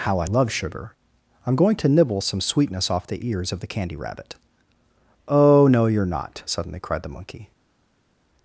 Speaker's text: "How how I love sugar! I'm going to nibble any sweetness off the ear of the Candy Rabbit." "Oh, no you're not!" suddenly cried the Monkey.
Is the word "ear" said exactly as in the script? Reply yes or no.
no